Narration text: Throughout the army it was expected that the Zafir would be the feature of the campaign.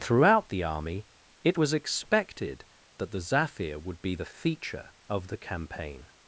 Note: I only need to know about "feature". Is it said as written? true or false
true